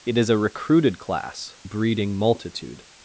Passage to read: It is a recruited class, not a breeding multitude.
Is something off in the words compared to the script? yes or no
yes